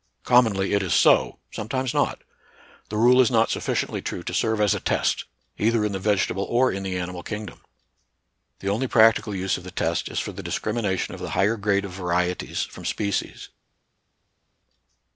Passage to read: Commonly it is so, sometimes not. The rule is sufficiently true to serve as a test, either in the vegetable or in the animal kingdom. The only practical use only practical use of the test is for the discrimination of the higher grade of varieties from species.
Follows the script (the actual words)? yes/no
no